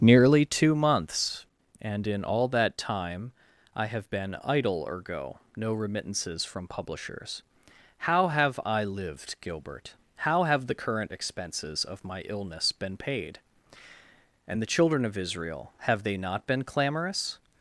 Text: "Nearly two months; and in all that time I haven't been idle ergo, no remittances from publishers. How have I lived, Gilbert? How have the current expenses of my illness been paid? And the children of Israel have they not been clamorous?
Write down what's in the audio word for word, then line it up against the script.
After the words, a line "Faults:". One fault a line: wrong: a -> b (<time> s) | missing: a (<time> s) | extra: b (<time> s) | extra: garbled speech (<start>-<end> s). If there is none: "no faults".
"Nearly two months; and in all that time I have been idle ergo, no remittances from publishers. How have I lived, Gilbert? How have the current expenses of my illness been paid? And the children of Israel have they not been clamorous?
Faults:
wrong: haven't -> have (3.9 s)